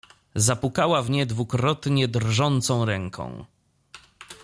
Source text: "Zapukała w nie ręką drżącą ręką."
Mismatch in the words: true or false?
true